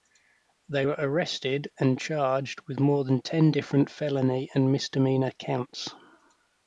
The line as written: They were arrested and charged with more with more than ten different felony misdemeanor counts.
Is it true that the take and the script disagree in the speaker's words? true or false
true